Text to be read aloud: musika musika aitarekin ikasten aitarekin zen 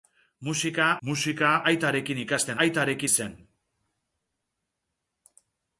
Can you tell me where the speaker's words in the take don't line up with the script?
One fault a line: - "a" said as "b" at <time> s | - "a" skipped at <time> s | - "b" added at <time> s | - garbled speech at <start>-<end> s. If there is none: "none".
none